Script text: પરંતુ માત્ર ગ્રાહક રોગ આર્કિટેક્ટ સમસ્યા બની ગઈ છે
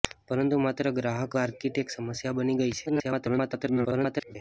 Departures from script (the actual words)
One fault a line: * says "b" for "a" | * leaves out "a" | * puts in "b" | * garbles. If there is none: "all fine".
* leaves out "રોગ"
* garbles